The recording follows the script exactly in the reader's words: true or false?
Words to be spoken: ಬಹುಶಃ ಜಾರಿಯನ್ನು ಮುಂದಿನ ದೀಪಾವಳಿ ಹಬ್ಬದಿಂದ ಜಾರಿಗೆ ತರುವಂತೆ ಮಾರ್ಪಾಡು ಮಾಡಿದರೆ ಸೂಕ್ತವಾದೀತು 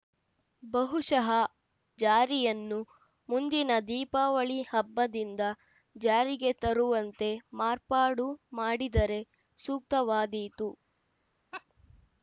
true